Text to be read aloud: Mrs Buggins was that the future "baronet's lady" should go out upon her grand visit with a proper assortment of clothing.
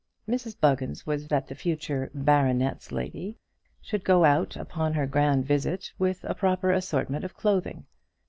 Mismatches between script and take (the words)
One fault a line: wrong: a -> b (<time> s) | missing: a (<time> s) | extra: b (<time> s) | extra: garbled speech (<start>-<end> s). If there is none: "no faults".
no faults